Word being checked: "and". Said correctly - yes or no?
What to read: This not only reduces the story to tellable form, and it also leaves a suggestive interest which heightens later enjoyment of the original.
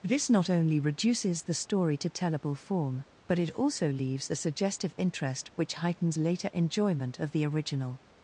no